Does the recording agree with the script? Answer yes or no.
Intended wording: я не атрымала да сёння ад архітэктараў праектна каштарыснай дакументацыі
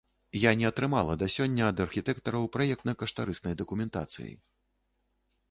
yes